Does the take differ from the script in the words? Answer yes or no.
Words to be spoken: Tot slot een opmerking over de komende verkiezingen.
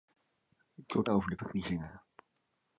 yes